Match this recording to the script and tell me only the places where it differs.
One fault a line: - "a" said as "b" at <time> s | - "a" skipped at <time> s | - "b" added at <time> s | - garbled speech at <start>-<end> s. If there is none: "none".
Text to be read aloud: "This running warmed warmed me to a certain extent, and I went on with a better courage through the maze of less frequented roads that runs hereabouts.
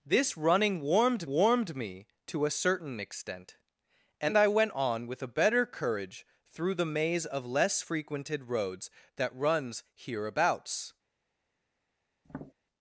none